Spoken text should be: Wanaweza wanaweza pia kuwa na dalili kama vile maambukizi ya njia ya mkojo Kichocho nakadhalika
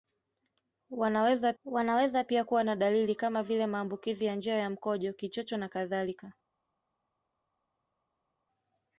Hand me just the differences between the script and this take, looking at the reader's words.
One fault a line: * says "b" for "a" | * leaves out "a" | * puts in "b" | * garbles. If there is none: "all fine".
all fine